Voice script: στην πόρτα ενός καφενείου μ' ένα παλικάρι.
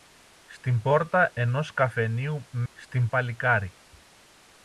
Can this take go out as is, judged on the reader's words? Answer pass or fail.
fail